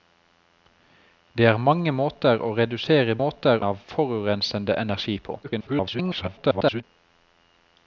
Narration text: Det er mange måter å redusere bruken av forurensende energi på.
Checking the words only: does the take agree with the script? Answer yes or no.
no